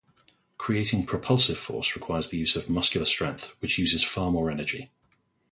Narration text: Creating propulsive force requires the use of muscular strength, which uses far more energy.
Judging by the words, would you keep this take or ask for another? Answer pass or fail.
pass